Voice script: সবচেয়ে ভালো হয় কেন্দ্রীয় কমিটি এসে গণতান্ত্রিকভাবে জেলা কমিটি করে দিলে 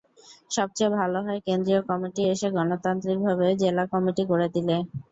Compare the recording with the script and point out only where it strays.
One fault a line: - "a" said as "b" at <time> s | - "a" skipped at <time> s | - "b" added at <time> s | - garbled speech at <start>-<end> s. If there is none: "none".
none